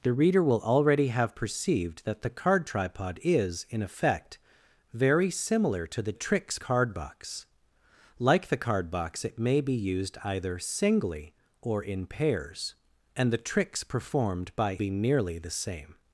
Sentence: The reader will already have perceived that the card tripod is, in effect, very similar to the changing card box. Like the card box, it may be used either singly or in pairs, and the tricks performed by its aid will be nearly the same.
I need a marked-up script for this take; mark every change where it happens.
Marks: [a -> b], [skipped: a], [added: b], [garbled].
The reader will already have perceived that the card tripod is, in effect, very similar to the [changing -> tricks] card box. Like the card box, it may be used either singly or in pairs, and the tricks performed by [skipped: its aid will] be nearly the same.